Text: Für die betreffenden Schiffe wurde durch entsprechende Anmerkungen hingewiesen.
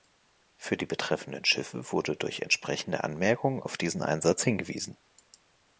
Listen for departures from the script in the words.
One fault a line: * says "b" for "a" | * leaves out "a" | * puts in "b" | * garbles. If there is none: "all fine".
* puts in "auf diesen Einsatz"